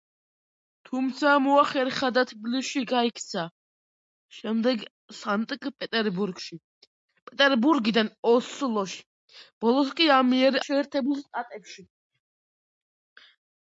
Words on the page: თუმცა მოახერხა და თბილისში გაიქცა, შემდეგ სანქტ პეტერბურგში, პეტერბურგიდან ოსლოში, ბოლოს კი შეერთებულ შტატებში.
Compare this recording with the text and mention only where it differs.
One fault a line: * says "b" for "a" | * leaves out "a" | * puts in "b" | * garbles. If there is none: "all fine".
all fine